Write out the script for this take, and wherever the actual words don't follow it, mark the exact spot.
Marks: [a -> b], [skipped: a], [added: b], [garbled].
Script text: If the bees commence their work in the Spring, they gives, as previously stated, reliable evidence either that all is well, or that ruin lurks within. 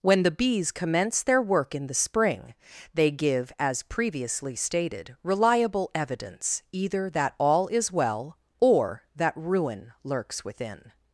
[If -> When] the bees commence their work in the Spring, they [gives, -> give] as previously stated, reliable evidence either that all is well, or that ruin lurks within.